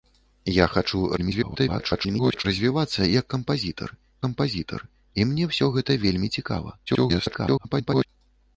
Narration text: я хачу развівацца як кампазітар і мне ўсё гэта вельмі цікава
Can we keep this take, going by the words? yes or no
no